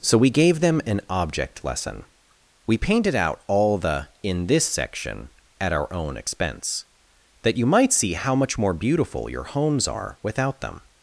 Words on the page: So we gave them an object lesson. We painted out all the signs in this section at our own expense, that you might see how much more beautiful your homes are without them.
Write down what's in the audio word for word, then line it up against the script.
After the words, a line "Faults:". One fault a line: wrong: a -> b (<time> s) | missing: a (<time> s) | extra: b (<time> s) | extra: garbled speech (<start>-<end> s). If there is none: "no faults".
So we gave them an object lesson. We painted out all the in this section at our own expense, that you might see how much more beautiful your homes are without them.
Faults:
missing: signs (4.1 s)